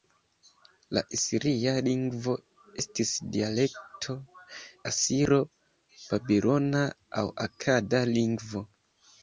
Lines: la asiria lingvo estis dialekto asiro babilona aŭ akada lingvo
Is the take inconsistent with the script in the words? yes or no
no